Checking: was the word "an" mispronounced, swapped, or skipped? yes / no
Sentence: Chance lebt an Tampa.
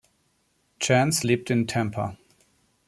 yes